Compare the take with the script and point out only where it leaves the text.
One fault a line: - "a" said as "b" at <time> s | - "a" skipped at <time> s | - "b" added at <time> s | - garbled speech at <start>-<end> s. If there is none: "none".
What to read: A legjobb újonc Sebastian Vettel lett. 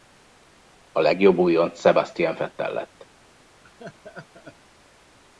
none